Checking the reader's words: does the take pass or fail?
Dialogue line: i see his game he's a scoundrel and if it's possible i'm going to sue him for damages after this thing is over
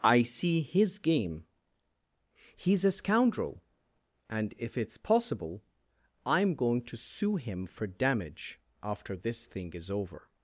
fail